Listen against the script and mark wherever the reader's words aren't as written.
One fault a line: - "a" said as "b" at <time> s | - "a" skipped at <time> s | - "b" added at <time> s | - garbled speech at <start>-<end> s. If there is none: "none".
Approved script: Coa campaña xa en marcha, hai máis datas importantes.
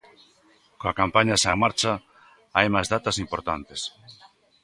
none